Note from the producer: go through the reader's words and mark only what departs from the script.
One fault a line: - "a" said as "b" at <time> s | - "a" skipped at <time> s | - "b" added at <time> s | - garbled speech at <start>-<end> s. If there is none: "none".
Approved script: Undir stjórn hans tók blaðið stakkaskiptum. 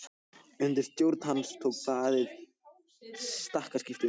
none